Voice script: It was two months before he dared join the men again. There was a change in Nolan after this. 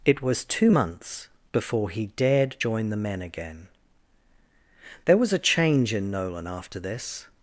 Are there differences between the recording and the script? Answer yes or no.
no